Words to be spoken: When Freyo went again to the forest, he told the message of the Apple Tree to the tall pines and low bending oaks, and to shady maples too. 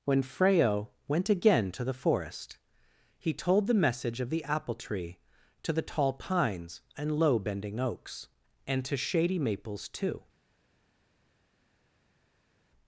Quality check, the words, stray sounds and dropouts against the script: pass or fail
pass